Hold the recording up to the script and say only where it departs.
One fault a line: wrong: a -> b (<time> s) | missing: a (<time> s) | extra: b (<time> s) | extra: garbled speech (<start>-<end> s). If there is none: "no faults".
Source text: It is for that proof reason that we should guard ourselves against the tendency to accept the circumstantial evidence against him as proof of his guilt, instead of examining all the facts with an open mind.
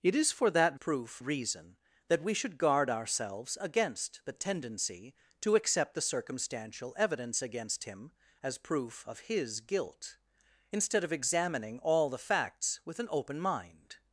no faults